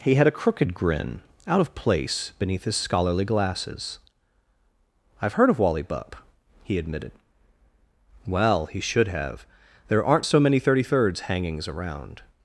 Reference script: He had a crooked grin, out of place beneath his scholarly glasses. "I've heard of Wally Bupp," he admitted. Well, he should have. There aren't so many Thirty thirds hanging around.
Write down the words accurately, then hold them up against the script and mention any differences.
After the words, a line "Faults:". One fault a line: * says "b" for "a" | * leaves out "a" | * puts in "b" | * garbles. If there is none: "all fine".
He had a crooked grin, out of place beneath his scholarly glasses. "I've heard of Wally Bupp," he admitted. Well, he should have. There aren't so many Thirty thirds hangings around.
Faults:
* says "hangings" for "hanging"